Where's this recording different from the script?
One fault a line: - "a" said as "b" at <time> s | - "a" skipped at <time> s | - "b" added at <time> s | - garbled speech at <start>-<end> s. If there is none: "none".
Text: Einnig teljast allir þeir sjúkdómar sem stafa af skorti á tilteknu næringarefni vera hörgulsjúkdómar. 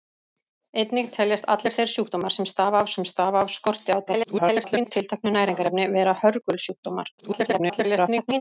- "sem stafa af" added at 3.0 s
- garbled speech at 4.1-4.9 s
- garbled speech at 7.2-8.4 s